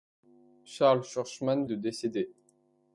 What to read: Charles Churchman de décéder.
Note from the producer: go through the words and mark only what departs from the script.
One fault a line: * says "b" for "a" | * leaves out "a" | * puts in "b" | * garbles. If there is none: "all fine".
all fine